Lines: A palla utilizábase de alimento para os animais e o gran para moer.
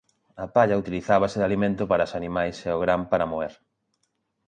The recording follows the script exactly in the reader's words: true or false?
true